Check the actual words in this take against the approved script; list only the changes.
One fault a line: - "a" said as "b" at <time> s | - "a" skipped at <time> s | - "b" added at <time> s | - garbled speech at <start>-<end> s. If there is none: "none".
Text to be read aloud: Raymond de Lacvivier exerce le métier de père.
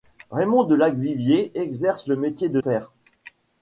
none